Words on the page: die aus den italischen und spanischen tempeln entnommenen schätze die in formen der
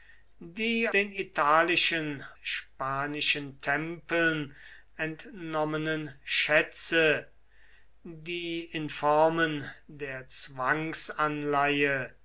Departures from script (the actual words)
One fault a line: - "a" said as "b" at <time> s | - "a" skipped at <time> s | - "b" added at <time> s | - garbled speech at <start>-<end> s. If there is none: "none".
- "aus" skipped at 0.9 s
- "und" skipped at 2.2 s